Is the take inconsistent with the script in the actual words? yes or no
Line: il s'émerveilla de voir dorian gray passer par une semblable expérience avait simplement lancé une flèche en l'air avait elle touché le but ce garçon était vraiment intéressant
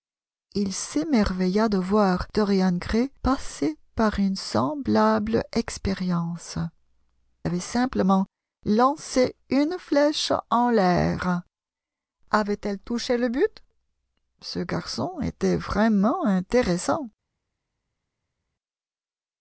no